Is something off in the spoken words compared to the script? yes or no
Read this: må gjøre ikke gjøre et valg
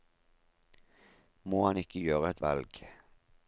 yes